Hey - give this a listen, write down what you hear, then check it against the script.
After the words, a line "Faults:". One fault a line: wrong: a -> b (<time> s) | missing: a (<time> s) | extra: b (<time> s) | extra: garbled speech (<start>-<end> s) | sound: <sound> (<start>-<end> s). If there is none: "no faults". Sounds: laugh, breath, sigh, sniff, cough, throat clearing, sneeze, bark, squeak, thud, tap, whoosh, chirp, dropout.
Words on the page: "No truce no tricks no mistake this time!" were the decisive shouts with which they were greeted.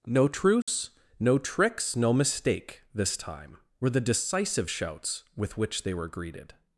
"No truce no tricks no mistake this time!" were the decisive shouts with which they were greeted.
Faults:
sound: dropout (0.6-0.7 s)